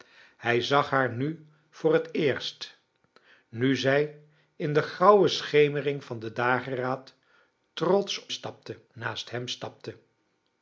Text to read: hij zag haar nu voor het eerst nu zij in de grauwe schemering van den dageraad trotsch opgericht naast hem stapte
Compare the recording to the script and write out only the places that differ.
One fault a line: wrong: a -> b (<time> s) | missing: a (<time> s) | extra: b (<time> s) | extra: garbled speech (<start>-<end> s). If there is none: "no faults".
wrong: opgericht -> stapte (8.3 s)